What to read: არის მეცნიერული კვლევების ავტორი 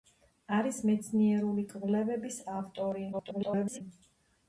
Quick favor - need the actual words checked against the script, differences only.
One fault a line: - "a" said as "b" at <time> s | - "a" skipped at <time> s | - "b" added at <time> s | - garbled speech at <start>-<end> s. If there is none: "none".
- garbled speech at 3.1-3.8 s